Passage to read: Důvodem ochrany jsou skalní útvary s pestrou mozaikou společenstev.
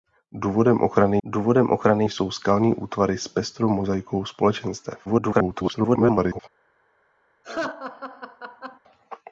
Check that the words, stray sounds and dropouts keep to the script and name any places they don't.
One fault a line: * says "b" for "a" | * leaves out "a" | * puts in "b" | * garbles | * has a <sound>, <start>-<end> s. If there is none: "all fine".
* puts in "důvodem ochrany"
* garbles
* has a laugh, 7.4-8.8 s